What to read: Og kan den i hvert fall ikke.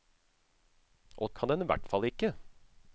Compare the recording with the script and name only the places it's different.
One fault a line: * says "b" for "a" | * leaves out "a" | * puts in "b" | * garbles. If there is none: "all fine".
all fine